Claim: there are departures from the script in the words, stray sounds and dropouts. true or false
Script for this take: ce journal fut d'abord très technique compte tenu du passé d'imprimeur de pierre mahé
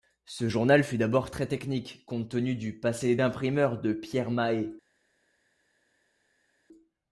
false